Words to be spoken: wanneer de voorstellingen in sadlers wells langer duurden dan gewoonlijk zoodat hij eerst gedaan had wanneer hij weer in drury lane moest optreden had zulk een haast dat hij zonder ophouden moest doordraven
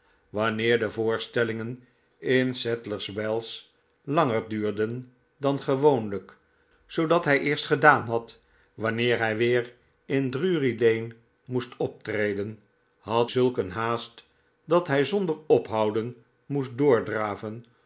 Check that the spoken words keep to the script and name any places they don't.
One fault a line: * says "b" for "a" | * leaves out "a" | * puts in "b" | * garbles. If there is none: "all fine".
all fine